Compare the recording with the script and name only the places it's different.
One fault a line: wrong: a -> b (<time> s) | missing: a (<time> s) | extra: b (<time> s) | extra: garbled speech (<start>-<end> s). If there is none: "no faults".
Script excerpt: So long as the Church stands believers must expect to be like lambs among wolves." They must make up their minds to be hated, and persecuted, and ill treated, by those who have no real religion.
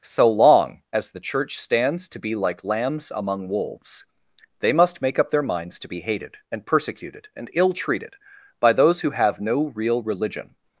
missing: believers must expect (2.1 s)